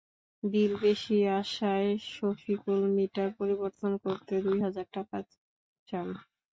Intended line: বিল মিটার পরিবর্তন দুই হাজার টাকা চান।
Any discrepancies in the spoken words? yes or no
yes